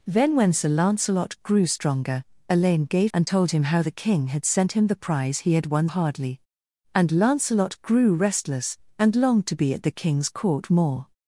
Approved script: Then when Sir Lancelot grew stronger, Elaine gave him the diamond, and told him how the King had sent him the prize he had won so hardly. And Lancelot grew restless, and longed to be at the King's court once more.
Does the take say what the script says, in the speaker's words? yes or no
no